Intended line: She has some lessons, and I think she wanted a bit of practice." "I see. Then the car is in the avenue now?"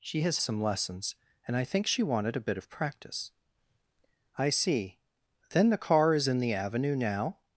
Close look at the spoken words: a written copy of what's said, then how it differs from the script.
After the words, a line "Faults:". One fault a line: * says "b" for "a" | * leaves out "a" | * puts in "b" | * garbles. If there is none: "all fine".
She has some lessons, and I think she wanted a bit of practice." "I see. Then the car is in the avenue now?"
Faults:
all fine